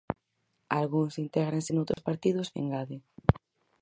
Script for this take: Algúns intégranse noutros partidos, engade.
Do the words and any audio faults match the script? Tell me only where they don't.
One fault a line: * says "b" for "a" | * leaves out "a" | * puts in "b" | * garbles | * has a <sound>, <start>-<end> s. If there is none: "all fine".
* has a dropout, 1.9-2.0 s